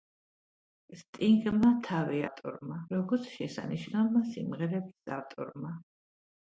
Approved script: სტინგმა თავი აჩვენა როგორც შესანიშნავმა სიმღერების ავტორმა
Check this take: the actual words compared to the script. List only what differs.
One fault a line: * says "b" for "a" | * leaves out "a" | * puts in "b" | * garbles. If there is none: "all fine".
* says "ავტორმა" for "აჩვენა"